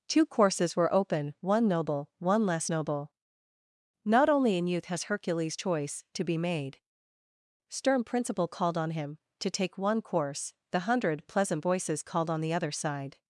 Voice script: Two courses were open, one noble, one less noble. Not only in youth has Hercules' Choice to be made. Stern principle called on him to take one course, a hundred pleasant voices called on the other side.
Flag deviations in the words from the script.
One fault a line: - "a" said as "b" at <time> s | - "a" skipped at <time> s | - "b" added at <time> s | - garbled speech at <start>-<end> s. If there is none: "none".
- "a" said as "the" at 10.7 s